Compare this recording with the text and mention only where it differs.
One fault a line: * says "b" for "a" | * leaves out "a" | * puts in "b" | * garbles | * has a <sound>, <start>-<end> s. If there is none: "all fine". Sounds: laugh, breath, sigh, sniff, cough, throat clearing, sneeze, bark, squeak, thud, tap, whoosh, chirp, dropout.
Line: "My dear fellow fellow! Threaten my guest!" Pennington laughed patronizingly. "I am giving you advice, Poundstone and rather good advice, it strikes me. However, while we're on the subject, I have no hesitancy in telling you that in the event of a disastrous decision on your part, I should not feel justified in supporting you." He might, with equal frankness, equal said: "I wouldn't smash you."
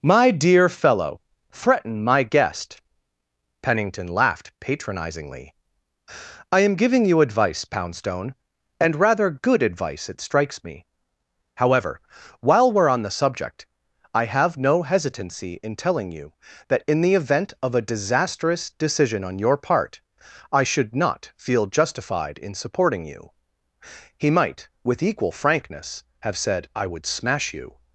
* leaves out "fellow"
* says "have" for "equal"
* says "would" for "wouldn't"